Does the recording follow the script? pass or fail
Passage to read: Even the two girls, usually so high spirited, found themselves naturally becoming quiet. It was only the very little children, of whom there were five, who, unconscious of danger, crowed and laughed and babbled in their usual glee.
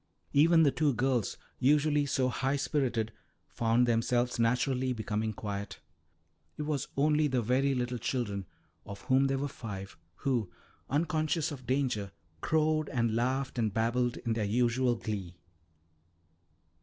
pass